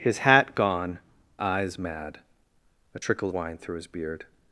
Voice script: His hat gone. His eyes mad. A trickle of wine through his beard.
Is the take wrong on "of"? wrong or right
wrong